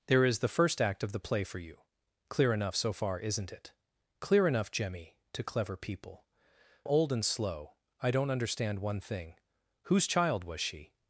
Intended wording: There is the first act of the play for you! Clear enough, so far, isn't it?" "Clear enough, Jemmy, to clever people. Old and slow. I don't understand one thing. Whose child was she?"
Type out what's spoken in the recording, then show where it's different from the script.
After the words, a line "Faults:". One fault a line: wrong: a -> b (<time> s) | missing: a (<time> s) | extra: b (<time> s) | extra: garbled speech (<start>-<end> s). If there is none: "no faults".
There is the first act of the play for you! Clear enough, so far, isn't it?" "Clear enough, Jemmy, to clever people. Old and slow. I don't understand one thing. Whose child was she?"
Faults:
no faults